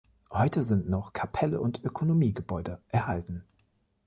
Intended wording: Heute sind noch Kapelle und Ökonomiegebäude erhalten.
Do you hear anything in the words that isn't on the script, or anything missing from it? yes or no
no